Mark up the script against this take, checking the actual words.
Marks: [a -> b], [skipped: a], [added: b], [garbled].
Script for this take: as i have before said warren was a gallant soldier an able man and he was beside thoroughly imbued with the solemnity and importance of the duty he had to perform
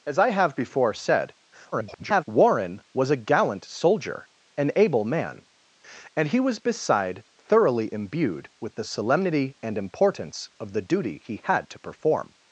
as i have before said [garbled] warren was a gallant soldier an able man and he was beside thoroughly imbued with the solemnity and importance of the duty he had to perform